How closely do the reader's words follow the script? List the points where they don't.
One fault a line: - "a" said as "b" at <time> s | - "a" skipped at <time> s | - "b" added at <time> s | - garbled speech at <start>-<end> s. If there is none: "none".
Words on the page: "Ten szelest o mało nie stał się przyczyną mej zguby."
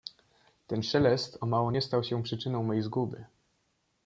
none